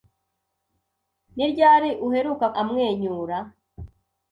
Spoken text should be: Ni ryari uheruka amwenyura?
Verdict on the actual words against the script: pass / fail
pass